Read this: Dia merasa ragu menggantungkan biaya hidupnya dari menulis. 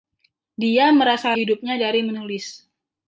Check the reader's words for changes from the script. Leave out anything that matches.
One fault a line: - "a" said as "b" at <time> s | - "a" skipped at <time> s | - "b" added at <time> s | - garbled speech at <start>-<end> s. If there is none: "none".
- "ragu menggantungkan biaya" skipped at 1.4 s